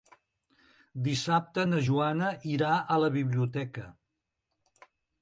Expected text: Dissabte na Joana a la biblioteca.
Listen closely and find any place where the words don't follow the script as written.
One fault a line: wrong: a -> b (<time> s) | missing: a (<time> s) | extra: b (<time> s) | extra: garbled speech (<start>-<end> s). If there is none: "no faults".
extra: irà (2.5 s)